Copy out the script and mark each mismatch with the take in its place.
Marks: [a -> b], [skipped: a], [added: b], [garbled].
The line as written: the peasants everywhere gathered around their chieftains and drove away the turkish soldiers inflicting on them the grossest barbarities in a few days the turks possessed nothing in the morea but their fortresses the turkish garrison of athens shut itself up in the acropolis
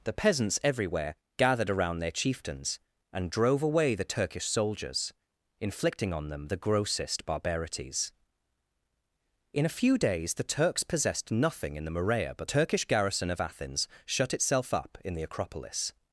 the peasants everywhere gathered around their chieftains and drove away the turkish soldiers inflicting on them the grossest barbarities in a few days the turks possessed nothing in the morea but [skipped: their fortresses the] turkish garrison of athens shut itself up in the acropolis